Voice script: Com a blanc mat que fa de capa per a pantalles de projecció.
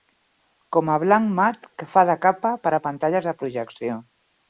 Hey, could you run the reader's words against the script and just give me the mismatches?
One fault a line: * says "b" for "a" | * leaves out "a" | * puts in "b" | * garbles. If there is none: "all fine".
all fine